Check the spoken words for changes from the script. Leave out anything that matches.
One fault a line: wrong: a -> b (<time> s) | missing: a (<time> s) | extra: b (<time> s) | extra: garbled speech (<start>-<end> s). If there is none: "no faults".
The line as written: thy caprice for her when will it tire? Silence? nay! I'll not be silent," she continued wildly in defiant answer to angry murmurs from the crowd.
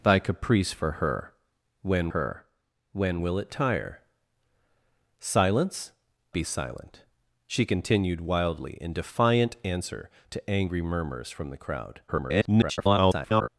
extra: her when (2.1 s)
missing: nay I'll not (5.9 s)
extra: garbled speech (12.1-13.5 s)